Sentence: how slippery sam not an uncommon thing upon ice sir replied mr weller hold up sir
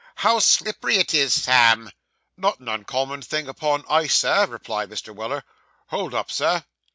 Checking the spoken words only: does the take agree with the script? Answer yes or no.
no